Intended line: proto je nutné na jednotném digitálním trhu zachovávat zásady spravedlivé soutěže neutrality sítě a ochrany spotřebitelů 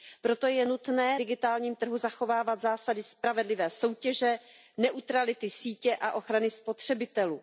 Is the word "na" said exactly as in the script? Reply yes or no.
no